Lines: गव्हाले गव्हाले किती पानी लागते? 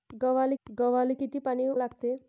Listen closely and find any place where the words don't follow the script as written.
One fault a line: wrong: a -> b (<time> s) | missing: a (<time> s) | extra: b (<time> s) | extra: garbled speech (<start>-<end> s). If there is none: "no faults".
no faults